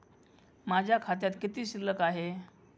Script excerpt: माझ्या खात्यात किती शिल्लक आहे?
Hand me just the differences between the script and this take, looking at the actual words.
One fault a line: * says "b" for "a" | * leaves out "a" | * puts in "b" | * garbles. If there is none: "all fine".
all fine